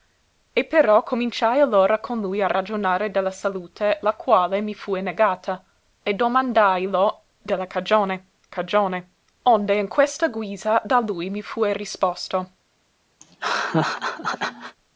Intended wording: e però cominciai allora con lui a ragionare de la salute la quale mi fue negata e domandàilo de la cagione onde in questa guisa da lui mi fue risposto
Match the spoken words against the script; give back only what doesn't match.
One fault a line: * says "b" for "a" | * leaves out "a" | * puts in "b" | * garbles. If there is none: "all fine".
* puts in "cagione"